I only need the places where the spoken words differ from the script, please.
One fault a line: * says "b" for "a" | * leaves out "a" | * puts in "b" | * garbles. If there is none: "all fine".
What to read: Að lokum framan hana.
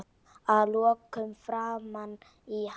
* puts in "í"